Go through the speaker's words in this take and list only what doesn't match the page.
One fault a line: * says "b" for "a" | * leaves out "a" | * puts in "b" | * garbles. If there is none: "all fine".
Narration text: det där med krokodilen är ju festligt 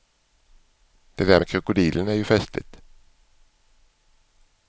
all fine